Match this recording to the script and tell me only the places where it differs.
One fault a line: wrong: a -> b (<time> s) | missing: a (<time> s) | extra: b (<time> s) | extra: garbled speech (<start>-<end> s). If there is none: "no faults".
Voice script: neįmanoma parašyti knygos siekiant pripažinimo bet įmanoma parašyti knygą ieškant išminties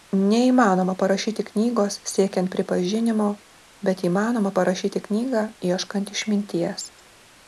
no faults